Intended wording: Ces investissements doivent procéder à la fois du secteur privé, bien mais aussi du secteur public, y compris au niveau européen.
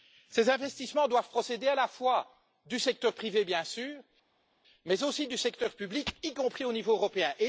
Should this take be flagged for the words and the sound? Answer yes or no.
yes